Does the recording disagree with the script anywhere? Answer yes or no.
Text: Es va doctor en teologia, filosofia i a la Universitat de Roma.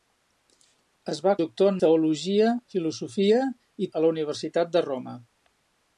no